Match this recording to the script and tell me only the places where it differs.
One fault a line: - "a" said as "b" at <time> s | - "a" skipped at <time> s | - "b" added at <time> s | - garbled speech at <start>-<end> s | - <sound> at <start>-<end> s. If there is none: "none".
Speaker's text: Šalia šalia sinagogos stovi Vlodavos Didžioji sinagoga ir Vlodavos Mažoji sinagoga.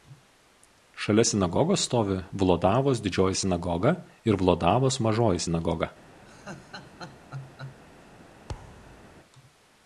- "šalia" skipped at 1.2 s
- laugh at 6.3-7.8 s
- thud at 8.5-9.1 s